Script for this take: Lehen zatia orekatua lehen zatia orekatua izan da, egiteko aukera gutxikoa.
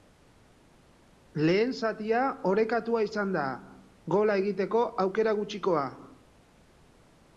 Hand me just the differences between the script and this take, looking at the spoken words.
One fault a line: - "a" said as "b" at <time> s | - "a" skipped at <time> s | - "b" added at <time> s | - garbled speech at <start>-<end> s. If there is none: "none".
- "lehen zatia orekatua" skipped at 3.0 s
- "gola" added at 4.2 s